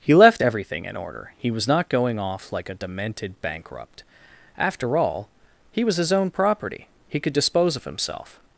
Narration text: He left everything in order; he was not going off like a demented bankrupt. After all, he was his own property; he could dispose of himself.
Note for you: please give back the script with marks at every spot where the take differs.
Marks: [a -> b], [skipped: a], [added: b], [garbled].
He left everything in order; he was not going off like a demented bankrupt. After all, he was his own property; he could dispose of himself.